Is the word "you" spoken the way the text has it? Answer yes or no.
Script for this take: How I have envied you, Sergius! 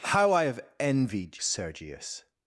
no